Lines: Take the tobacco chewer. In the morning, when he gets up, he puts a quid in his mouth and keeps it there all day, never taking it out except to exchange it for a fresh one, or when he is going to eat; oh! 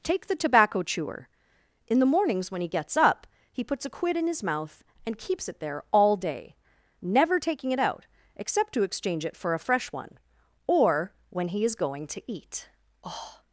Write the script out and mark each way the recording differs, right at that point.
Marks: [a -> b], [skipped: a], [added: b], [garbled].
Take the tobacco chewer. In the [morning, -> mornings] when he gets up, he puts a quid in his mouth and keeps it there all day, never taking it out except to exchange it for a fresh one, or when he is going to eat; oh!